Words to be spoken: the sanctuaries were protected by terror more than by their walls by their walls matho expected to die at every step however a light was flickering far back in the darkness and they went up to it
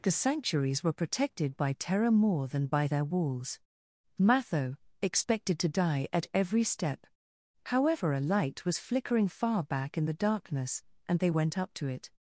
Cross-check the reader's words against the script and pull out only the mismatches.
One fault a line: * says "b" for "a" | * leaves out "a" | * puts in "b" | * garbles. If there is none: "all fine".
* leaves out "by their walls"